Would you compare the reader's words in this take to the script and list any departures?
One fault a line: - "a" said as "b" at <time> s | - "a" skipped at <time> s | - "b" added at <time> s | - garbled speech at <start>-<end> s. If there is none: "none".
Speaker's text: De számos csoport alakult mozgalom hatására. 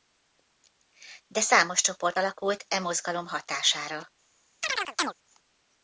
- "e" added at 2.7 s